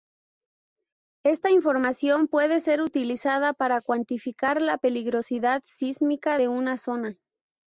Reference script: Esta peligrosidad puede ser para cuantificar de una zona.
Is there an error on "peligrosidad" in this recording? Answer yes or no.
yes